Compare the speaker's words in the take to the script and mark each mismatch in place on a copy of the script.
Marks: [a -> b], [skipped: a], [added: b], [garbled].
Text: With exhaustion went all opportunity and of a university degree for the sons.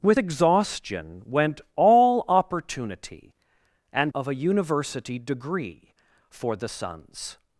With exhaustion went all opportunity and of a university degree for the sons.